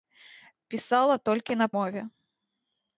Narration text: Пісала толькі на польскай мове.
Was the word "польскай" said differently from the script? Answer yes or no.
yes